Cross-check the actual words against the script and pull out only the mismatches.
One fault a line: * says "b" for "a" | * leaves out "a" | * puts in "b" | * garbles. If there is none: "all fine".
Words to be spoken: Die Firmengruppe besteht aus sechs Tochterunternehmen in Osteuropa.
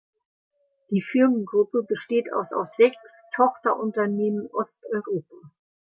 * puts in "aus"
* leaves out "in"